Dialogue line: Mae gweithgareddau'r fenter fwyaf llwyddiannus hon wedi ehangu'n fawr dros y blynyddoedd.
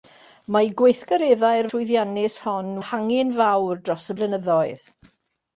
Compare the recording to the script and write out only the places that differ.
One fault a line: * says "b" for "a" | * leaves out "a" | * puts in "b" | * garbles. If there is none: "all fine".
* leaves out "fenter fwyaf"
* leaves out "wedi"